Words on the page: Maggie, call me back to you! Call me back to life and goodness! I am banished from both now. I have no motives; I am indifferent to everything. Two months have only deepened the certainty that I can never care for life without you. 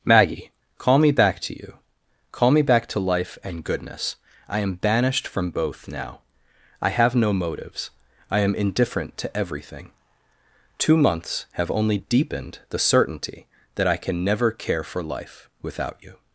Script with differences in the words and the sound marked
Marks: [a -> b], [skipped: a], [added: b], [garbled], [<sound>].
Maggie, call me back to you! Call me back to life and goodness! I am banished from both now. I have no motives; I am indifferent to everything. Two months have only deepened the certainty that I can never care for life without you.